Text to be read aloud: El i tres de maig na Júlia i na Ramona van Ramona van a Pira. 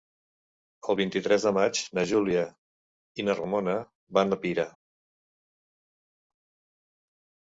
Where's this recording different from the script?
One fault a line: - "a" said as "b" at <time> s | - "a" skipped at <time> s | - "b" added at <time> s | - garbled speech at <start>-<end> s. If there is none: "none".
- "vint" added at 1.0 s
- "Ramona van" skipped at 4.4 s